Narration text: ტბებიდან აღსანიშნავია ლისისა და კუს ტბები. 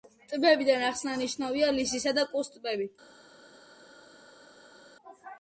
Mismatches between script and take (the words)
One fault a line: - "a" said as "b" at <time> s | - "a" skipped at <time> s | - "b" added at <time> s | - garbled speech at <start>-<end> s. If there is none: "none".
none